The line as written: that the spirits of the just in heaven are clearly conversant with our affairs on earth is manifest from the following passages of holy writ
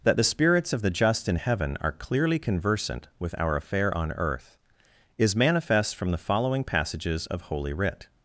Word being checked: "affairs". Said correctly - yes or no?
no